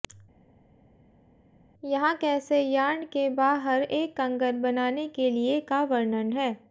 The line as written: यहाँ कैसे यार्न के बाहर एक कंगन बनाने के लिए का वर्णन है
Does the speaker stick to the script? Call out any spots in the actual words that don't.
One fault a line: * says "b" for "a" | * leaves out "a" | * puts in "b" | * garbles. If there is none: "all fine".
all fine